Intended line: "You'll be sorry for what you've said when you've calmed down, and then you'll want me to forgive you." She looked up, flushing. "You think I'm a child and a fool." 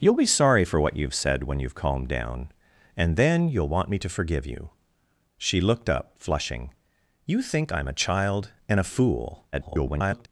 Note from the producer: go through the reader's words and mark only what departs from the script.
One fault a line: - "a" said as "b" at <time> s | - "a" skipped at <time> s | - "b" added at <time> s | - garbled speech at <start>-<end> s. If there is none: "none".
- garbled speech at 9.5-10.3 s